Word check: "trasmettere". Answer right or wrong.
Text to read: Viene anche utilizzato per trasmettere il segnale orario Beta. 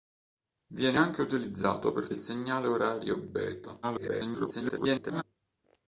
wrong